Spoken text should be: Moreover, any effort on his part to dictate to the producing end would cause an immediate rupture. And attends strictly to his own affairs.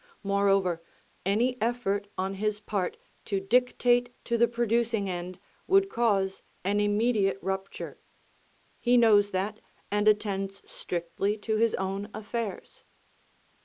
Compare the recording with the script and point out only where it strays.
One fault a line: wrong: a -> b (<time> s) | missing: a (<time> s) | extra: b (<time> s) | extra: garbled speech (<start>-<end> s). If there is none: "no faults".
extra: He knows that (8.8 s)